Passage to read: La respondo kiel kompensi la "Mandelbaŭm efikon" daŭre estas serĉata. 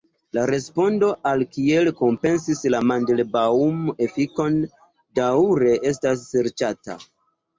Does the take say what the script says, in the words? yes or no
no